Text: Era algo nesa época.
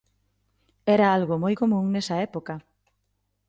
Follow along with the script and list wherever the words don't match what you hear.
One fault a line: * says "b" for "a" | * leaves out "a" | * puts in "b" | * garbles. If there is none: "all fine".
* puts in "moi común"